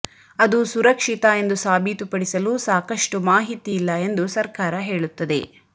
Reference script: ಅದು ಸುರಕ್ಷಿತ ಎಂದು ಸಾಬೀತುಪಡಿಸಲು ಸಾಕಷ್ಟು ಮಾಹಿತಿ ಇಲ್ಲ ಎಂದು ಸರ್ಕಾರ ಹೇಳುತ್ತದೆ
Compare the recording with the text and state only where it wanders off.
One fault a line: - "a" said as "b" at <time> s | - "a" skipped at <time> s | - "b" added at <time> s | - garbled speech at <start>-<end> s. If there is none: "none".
none